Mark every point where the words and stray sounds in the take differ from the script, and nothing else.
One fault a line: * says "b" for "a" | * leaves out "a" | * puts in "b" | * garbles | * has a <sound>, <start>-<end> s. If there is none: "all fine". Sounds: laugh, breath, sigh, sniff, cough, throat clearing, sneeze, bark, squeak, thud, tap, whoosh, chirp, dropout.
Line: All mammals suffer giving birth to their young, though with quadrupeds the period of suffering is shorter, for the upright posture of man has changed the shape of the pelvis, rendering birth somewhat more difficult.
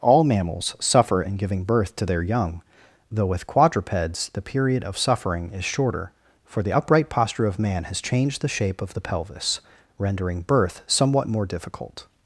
* puts in "in"